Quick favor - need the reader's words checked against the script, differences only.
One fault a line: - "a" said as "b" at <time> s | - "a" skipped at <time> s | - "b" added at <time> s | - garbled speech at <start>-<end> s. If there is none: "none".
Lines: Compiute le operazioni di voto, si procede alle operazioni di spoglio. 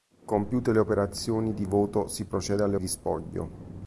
- "operazioni" skipped at 2.8 s